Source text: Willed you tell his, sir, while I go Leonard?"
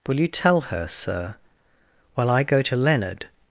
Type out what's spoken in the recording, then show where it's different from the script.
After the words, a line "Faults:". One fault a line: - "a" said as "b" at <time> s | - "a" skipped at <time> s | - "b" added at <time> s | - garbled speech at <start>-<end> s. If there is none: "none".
Will you tell her, sir, while I go to Leonard?"
Faults:
- "Willed" said as "Will" at 0.1 s
- "his" said as "her" at 0.6 s
- "to" added at 2.6 s